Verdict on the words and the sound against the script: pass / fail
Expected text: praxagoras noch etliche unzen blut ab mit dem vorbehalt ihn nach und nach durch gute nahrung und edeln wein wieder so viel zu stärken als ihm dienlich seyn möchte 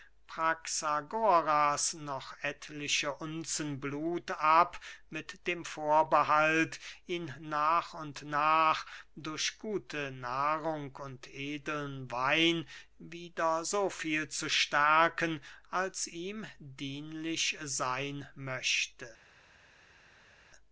pass